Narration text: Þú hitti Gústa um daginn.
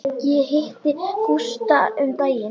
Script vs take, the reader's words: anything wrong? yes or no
yes